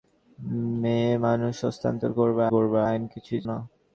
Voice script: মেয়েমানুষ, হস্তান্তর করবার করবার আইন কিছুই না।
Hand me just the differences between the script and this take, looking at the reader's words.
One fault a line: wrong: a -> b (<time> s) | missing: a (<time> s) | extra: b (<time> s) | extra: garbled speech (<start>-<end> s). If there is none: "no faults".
no faults